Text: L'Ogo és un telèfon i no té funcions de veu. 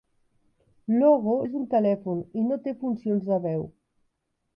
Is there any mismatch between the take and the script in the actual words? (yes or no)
no